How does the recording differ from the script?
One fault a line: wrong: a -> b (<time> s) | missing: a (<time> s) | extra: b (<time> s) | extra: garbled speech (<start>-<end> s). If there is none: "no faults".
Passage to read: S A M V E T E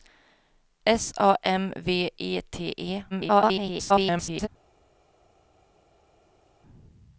extra: garbled speech (3.1-4.5 s)